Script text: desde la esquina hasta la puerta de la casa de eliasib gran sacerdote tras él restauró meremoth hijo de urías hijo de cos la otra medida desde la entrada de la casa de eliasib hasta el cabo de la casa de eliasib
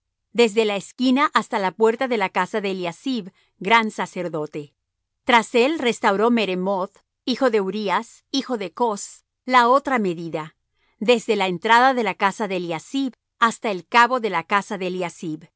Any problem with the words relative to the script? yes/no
no